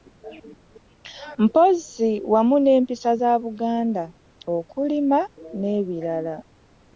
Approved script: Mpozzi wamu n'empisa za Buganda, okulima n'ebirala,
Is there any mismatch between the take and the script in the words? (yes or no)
no